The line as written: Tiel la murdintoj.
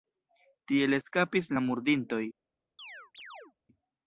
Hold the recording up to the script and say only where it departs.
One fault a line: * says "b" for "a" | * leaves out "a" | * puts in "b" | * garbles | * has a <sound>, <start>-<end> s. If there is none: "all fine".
* puts in "eskapis"
* has a chirp, 2.8-3.6 s